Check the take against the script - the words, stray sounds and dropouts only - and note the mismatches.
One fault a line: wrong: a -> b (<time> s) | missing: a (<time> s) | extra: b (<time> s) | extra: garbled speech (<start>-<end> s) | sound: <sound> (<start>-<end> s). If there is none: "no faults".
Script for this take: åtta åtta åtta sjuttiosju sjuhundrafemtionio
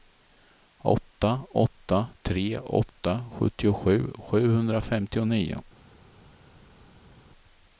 extra: tre (2.2 s)